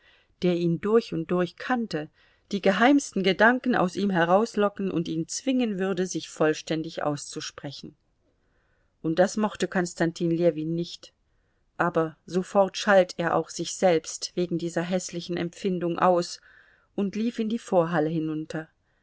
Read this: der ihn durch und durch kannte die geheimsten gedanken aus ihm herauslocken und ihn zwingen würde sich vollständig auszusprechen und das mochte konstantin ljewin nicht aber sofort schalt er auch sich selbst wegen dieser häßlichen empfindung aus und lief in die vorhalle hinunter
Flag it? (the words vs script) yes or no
no